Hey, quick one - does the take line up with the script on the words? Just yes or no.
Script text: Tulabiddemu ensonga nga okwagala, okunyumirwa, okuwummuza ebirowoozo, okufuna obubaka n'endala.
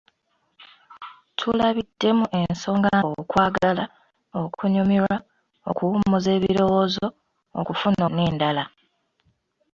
no